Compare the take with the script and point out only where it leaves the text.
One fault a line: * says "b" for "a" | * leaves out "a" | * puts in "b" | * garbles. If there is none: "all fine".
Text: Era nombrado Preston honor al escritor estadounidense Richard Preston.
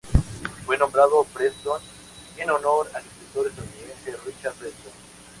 * says "Fue" for "Era"
* puts in "en"